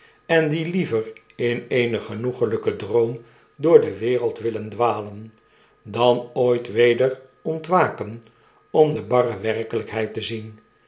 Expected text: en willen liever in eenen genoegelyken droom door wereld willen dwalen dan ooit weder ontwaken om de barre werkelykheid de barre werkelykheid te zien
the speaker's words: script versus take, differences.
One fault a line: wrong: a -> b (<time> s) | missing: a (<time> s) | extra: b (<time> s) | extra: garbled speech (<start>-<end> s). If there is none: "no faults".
wrong: willen -> die (0.5 s)
extra: de (3.8 s)
missing: de barre werkelykheid (10.1 s)